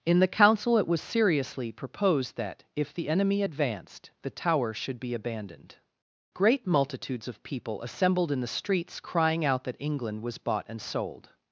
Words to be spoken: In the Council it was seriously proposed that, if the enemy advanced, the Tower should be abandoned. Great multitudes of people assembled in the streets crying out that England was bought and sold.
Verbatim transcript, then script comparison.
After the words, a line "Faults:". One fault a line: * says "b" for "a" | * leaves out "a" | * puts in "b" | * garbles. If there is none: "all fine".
In the Council it was seriously proposed that, if the enemy advanced, the Tower should be abandoned. Great multitudes of people assembled in the streets crying out that England was bought and sold.
Faults:
all fine